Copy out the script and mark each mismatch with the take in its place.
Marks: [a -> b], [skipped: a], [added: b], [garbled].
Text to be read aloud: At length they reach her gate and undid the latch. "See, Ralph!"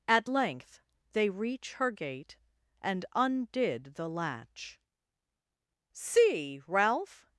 At length they reach her gate and undid the latch. "See, Ralph!"